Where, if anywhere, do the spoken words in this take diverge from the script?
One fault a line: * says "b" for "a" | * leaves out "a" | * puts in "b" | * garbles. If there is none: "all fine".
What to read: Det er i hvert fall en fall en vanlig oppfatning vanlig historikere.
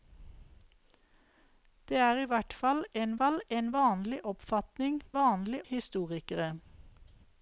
all fine